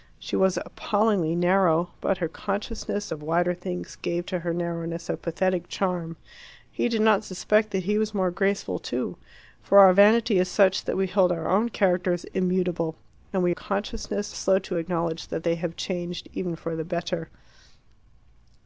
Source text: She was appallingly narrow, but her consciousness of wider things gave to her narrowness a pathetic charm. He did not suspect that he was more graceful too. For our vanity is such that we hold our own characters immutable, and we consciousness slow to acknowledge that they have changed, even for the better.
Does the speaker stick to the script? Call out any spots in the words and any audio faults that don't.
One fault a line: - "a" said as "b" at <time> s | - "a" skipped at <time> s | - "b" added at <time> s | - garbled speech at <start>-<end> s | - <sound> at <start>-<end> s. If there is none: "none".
none